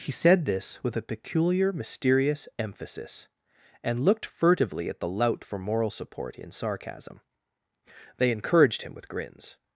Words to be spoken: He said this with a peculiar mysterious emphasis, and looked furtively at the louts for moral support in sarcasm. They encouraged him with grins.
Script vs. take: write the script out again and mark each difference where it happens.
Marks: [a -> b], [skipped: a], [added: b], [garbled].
He said this with a peculiar mysterious emphasis, and looked furtively at the [louts -> lout] for moral support in sarcasm. They encouraged him with grins.